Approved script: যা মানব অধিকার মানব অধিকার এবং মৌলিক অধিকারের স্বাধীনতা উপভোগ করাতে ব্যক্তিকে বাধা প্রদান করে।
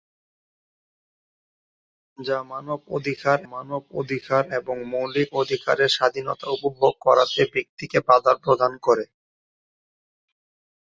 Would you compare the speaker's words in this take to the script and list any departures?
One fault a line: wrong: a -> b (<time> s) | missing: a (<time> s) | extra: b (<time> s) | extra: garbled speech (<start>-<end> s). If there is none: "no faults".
no faults